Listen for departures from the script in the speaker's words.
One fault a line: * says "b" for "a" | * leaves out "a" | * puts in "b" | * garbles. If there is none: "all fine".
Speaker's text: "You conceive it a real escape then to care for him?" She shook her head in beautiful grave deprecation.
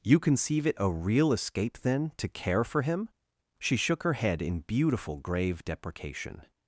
all fine